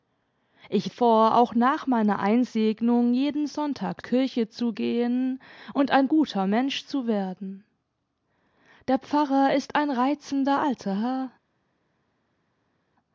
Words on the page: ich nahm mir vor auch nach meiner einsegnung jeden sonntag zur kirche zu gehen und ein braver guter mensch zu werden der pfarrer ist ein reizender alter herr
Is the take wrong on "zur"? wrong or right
wrong